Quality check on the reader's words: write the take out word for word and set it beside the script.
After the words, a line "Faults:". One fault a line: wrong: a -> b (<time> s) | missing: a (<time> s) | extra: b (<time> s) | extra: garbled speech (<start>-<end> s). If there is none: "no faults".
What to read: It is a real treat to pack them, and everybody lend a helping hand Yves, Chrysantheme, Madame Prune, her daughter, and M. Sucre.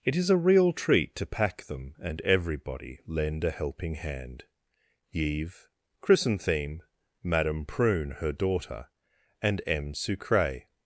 It is a real treat to pack them, and everybody lend a helping hand Yves, Chrysantheme, Madame Prune, her daughter, and M. Sucre.
Faults:
no faults